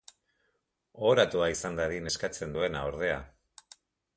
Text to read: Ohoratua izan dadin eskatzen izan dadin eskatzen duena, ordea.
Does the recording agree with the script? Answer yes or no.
no